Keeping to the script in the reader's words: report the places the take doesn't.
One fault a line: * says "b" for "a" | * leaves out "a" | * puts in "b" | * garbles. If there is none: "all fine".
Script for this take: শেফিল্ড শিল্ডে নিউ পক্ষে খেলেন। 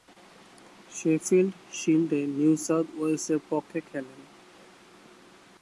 * puts in "সাউথ ওয়েলসের"